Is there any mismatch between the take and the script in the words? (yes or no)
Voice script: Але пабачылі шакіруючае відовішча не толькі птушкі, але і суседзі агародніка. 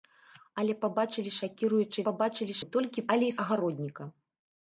yes